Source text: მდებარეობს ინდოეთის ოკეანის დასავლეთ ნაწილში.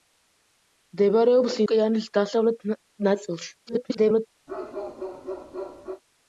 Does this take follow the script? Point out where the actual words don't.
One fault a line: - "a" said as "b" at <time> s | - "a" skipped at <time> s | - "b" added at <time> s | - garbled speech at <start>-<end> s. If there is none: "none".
- "ინდოეთის" skipped at 1.6 s
- garbled speech at 3.7-4.3 s